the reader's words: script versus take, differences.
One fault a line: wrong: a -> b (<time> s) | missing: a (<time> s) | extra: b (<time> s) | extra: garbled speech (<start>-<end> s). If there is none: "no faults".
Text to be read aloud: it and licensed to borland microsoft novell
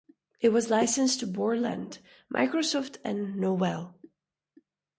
wrong: and -> was (0.5 s)
extra: and (3.0 s)